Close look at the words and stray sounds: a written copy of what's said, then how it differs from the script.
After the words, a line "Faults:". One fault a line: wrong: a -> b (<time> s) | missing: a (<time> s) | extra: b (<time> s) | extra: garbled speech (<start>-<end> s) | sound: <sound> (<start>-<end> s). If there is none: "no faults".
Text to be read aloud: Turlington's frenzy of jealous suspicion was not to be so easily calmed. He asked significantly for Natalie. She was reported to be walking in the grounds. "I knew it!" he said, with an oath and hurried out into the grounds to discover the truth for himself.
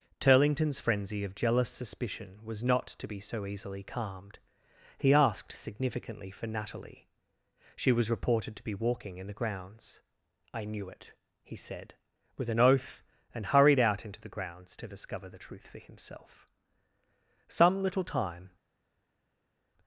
Turlington's frenzy of jealous suspicion was not to be so easily calmed. He asked significantly for Natalie. She was reported to be walking in the grounds. "I knew it!" he said, with an oath and hurried out into the grounds to discover the truth for himself. Some little time
Faults:
extra: Some little time (17.5 s)